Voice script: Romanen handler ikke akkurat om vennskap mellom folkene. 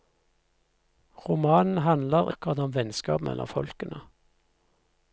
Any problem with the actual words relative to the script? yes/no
yes